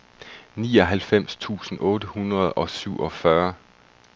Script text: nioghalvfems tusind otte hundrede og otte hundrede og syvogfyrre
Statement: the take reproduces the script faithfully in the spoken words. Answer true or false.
false